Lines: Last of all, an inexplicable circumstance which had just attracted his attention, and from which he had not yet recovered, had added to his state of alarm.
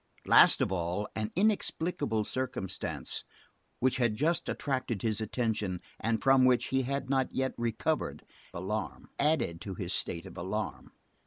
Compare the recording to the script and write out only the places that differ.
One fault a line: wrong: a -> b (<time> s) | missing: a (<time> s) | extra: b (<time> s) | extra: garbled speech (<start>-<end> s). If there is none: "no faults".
wrong: had -> alarm (8.5 s)